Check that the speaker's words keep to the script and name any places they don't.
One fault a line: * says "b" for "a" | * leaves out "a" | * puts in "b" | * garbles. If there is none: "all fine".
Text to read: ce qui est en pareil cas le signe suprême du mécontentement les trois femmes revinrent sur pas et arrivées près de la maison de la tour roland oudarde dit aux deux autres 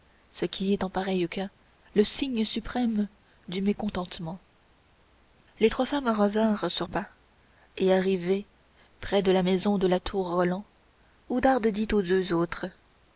all fine